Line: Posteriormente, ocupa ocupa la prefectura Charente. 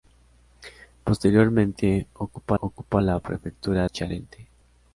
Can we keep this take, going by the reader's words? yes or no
yes